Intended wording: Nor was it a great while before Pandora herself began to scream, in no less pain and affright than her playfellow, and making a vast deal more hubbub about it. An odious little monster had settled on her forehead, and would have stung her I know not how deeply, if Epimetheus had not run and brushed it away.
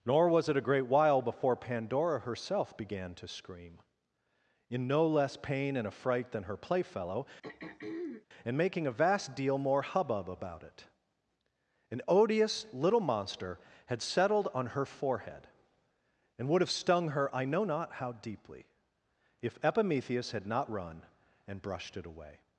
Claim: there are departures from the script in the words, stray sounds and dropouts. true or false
true